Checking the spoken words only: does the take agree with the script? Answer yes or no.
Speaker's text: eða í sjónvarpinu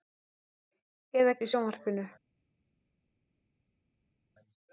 yes